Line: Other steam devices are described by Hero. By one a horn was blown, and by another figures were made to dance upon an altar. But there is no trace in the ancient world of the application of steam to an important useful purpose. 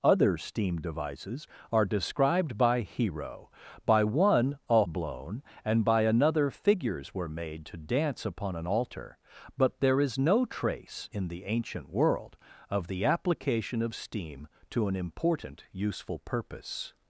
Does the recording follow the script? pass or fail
fail